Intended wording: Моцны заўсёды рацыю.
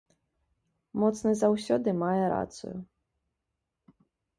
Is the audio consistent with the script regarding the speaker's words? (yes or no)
no